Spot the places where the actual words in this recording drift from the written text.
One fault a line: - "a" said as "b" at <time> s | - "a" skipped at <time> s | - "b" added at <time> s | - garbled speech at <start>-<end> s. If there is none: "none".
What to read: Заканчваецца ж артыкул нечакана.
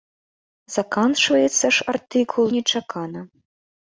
none